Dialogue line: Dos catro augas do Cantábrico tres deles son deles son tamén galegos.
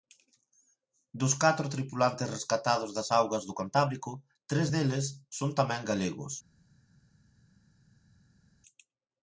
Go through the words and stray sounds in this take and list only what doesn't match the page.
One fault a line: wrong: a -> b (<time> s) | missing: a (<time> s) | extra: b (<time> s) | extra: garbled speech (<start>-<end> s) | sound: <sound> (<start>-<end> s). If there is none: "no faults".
extra: tripulantes rescatados das (1.8 s)
missing: deles son (5.5 s)